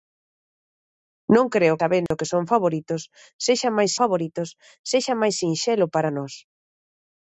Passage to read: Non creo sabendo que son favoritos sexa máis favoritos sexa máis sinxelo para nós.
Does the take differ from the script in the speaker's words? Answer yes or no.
no